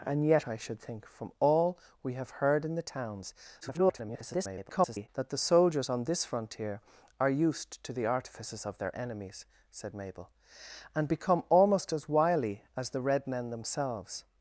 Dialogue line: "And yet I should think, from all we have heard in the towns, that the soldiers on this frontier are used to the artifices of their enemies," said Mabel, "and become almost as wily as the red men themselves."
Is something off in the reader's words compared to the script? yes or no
yes